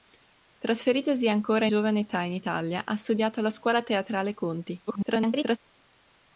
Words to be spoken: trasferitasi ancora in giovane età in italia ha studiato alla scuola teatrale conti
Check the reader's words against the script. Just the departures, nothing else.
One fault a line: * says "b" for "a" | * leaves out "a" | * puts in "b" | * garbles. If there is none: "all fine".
* leaves out "in"
* garbles